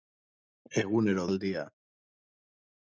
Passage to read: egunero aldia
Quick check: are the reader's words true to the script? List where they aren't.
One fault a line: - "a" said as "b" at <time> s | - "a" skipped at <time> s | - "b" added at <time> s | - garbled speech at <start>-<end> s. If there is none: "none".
none